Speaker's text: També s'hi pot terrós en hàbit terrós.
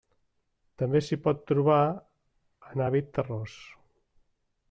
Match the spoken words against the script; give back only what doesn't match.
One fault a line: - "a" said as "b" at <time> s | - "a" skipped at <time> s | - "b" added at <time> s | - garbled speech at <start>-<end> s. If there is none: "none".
- "terrós" said as "trobar" at 1.5 s